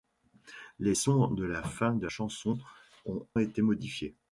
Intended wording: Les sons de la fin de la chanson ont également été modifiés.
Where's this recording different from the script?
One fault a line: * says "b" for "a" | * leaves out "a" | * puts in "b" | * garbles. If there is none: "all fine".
* leaves out "la"
* leaves out "également"